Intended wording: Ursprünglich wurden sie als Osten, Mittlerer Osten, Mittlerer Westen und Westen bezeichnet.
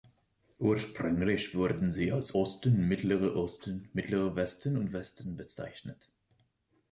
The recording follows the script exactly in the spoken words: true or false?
true